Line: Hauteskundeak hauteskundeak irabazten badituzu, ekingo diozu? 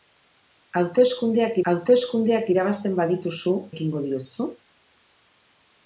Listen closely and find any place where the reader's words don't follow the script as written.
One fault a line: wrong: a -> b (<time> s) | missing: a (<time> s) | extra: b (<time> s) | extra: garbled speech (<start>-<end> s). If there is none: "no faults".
no faults